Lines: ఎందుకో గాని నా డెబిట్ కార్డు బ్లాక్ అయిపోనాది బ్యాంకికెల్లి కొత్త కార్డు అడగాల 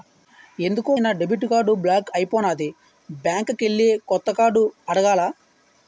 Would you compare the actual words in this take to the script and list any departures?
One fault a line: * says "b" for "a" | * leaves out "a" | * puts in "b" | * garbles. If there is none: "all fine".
* leaves out "గాని"